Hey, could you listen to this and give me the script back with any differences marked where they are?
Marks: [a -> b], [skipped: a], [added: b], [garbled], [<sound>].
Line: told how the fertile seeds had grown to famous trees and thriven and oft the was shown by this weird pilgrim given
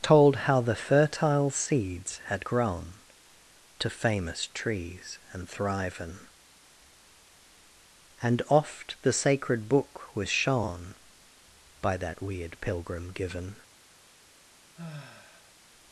told how the fertile seeds had grown to famous trees and thriven and oft the [added: sacred book] was shown by [this -> that] weird pilgrim given [sigh]